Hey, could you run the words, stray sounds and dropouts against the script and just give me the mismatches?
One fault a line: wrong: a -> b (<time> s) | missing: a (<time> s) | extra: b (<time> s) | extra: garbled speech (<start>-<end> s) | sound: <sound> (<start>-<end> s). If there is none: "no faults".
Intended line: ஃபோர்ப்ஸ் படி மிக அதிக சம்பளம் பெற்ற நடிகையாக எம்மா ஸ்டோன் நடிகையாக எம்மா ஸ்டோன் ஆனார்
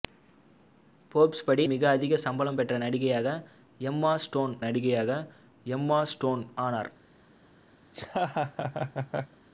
sound: laugh (7.8-9.4 s)